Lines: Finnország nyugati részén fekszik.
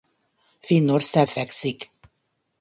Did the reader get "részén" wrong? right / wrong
wrong